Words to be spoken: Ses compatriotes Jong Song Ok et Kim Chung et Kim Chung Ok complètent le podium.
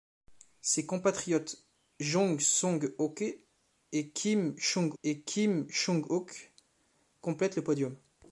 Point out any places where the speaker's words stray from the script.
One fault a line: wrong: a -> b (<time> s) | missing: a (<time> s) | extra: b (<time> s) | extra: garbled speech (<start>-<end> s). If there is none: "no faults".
no faults